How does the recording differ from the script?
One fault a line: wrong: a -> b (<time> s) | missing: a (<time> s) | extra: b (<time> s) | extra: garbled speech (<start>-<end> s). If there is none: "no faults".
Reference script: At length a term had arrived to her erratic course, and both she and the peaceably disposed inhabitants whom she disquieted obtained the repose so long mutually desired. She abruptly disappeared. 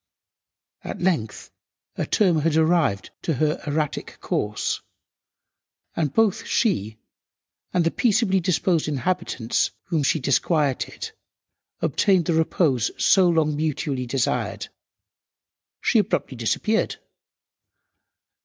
no faults